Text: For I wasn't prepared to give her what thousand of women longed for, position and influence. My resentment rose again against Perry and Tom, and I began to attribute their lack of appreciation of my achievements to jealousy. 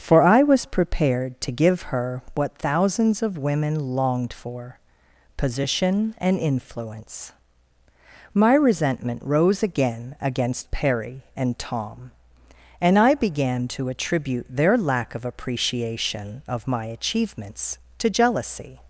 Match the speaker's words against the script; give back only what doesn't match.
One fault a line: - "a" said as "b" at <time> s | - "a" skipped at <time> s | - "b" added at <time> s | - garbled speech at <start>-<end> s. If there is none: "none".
- "wasn't" said as "was" at 0.4 s
- "thousand" said as "thousands" at 2.6 s